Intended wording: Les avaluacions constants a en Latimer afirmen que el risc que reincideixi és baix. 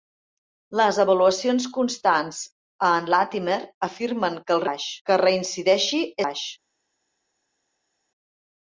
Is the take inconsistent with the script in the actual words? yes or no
yes